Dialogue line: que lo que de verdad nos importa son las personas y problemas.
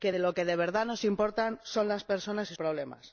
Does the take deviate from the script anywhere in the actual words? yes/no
no